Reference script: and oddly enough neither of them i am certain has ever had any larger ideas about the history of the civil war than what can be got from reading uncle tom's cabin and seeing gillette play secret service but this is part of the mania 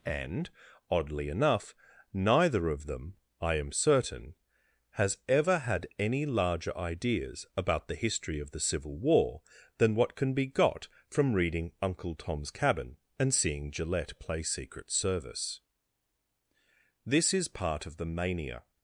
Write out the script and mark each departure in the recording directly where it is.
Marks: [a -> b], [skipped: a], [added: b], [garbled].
and oddly enough neither of them i am certain has ever had any larger ideas about the history of the civil war than what can be got from reading uncle tom's cabin and seeing gillette play secret service [skipped: but] this is part of the mania